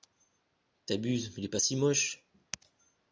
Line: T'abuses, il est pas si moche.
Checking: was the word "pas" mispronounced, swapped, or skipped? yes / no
no